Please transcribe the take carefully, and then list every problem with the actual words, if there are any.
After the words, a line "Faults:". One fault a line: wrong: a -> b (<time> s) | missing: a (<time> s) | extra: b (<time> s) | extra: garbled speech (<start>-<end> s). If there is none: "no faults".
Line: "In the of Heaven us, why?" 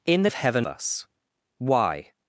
"In the of Heaven us, why?"
Faults:
no faults